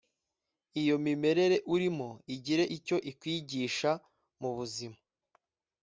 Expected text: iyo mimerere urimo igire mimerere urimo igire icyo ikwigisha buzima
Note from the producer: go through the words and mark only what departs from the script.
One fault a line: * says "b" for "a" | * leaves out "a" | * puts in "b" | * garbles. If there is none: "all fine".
* leaves out "mimerere urimo igire"
* puts in "mu"